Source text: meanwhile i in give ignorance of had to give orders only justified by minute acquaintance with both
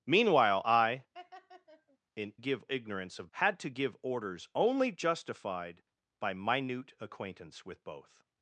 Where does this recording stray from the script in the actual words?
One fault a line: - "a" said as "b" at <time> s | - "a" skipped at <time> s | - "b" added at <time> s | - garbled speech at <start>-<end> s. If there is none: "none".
none